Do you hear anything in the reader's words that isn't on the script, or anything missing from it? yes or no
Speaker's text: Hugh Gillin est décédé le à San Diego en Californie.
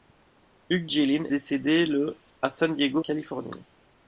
yes